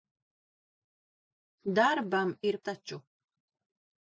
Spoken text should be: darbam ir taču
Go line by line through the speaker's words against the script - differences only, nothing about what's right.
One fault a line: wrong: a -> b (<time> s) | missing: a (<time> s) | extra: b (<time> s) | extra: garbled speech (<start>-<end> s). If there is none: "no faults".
no faults